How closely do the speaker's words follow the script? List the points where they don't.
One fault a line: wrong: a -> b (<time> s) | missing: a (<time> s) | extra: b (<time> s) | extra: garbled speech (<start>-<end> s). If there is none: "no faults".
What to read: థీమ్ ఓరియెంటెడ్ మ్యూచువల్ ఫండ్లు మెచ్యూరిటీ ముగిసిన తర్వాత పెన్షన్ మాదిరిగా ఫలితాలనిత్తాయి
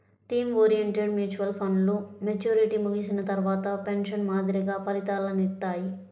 no faults